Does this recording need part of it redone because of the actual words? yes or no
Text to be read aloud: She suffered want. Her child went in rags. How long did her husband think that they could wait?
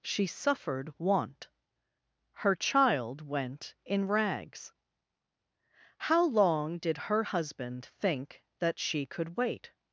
yes